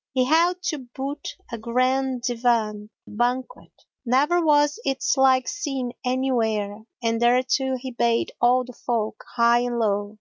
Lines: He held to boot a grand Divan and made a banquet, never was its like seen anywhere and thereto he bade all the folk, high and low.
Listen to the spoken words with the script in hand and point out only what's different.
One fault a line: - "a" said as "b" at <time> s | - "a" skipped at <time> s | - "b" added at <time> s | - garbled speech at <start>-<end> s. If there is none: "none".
- "and made a" skipped at 2.9 s